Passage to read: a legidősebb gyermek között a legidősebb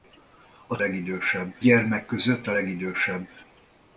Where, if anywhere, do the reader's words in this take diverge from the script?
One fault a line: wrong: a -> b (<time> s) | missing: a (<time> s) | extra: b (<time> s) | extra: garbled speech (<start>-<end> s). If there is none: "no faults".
no faults